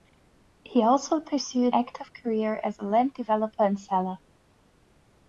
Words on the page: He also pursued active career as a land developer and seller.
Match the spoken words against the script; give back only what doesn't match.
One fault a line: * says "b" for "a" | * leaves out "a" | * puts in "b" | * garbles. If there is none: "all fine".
all fine